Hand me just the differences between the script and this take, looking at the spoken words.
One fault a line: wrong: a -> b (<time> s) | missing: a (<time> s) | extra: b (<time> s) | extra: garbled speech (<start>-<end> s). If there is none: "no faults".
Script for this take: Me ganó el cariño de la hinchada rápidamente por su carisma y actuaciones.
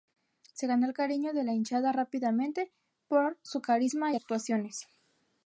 wrong: Me -> Se (0.5 s)